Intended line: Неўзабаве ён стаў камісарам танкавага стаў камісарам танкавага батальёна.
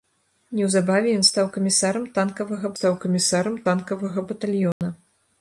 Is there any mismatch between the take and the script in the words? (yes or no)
no